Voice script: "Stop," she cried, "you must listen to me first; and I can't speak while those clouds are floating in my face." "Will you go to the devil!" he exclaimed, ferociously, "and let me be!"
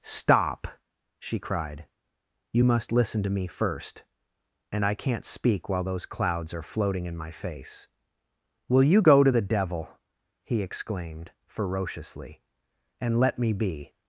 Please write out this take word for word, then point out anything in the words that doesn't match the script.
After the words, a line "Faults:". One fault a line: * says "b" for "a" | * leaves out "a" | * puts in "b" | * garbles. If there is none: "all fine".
"Stop," she cried, "you must listen to me first; and I can't speak while those clouds are floating in my face." "Will you go to the devil!" he exclaimed, ferociously, "and let me be!"
Faults:
all fine